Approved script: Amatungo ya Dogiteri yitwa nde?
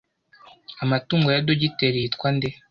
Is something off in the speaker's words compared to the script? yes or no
no